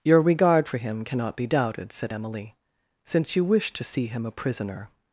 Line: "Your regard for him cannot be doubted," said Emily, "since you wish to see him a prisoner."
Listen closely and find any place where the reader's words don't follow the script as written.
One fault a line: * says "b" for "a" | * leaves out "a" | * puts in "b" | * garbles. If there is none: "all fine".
all fine